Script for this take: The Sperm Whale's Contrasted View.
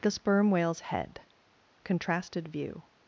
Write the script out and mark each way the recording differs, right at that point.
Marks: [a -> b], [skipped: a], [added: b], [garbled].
The Sperm Whale's [added: Head] Contrasted View.